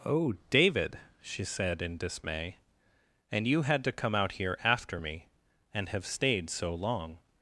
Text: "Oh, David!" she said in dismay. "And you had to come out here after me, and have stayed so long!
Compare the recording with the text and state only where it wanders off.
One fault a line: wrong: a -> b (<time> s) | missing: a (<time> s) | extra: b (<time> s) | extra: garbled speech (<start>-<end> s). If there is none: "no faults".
no faults